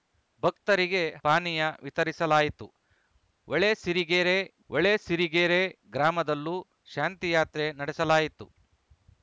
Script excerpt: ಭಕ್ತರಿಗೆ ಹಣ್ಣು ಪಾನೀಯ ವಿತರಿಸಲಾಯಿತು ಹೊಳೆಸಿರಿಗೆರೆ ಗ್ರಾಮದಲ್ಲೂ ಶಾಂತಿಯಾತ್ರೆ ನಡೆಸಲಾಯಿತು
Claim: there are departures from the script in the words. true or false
true